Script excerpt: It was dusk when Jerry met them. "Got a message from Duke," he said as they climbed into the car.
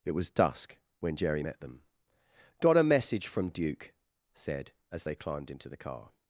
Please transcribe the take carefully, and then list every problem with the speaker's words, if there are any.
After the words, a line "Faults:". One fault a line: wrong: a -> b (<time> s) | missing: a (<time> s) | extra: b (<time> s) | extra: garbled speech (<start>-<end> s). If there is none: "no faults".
It was dusk when Jerry met them. "Got a message from Duke," said as they climbed into the car.
Faults:
missing: he (3.9 s)